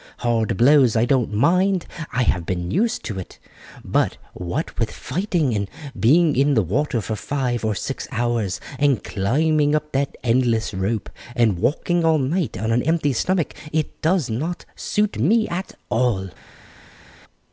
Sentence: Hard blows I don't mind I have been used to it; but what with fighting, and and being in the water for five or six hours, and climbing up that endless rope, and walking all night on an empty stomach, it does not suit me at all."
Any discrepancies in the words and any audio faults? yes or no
yes